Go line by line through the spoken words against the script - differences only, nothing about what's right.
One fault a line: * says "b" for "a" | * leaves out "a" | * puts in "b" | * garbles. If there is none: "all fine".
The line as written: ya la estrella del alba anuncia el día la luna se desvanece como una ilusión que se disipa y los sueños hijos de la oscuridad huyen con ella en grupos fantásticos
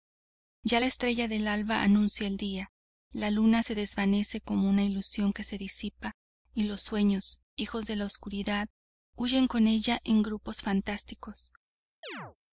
all fine